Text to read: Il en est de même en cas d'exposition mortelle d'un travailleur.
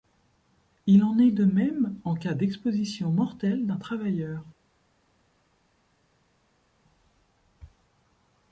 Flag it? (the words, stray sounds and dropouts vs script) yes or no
no